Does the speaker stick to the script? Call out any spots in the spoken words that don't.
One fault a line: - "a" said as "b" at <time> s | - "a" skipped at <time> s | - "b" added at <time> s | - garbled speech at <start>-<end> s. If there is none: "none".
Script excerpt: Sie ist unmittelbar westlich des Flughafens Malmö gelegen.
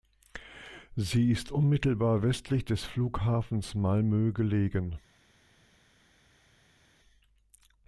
none